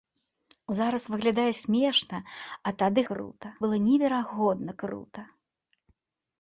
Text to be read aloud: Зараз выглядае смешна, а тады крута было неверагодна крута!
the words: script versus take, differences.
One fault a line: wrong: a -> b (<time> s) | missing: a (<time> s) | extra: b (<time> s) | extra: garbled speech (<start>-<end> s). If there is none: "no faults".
no faults